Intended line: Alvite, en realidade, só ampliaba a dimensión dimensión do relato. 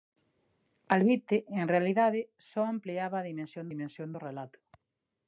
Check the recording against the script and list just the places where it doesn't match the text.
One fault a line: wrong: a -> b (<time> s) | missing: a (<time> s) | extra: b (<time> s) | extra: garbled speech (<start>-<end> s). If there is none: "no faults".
no faults